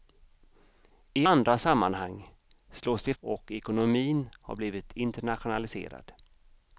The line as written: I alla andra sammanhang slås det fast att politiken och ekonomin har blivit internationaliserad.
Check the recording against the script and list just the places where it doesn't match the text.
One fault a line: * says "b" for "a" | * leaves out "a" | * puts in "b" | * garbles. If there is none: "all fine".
* leaves out "alla"
* leaves out "fast att politiken"